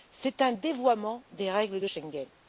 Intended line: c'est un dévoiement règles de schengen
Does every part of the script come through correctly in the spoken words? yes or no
no